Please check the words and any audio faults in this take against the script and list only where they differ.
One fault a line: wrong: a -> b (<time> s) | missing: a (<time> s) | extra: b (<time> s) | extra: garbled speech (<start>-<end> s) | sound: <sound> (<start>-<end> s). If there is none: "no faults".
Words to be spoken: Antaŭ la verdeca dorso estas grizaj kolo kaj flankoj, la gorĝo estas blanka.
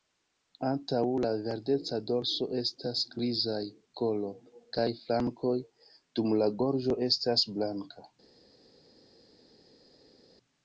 extra: dum (6.2 s)